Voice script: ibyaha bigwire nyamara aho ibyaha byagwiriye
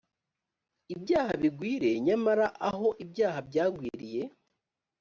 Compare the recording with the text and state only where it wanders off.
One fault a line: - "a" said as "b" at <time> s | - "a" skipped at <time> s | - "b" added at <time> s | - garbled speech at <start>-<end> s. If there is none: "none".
none